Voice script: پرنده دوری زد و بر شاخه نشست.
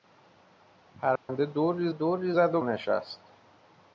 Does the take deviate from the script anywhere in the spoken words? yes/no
yes